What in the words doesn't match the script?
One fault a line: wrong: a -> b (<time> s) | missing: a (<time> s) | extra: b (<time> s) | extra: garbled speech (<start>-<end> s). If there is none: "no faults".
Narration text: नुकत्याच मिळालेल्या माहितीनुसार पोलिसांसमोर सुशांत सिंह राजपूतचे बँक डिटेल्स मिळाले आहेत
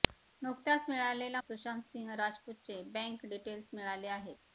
missing: माहितीनुसार पोलिसांसमोर (1.4 s)